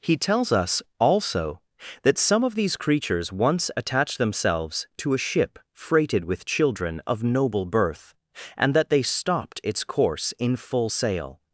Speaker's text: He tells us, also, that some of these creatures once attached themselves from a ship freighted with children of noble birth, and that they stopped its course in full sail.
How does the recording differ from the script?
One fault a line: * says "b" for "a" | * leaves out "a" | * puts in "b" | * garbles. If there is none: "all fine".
* says "to" for "from"